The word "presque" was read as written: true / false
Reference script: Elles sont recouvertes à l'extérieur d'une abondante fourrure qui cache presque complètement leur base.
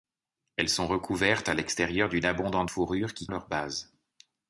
false